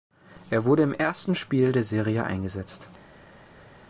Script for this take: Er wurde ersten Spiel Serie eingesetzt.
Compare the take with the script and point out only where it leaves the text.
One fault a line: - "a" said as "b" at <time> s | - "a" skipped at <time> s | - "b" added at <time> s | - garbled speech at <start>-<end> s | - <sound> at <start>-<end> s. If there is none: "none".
- "im" added at 0.8 s
- "der" added at 1.7 s